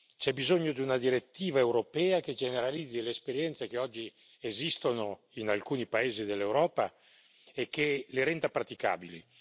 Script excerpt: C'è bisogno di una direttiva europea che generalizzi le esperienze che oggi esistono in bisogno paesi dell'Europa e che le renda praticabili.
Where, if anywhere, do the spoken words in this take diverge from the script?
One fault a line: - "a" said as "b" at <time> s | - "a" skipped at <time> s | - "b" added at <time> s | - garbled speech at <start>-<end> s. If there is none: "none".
- "bisogno" said as "alcuni" at 5.5 s